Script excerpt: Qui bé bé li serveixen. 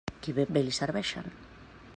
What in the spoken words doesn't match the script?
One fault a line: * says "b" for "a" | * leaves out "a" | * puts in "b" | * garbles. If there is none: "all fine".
all fine